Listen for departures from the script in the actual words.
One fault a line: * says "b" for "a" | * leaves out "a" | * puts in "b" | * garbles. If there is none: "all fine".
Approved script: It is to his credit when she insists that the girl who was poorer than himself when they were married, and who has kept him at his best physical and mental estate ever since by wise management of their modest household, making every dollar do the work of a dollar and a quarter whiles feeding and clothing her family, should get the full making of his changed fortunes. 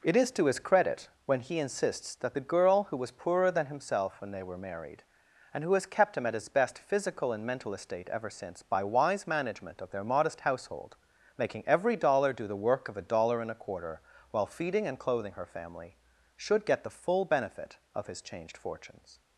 * says "he" for "she"
* says "while" for "whiles"
* says "benefit" for "making"